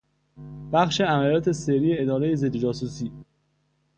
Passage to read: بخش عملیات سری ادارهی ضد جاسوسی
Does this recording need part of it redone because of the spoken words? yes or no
no